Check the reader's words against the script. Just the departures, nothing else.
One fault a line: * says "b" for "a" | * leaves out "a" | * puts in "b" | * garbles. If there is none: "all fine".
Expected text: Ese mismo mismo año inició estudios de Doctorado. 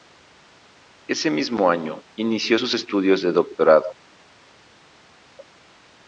* leaves out "mismo"
* puts in "sus"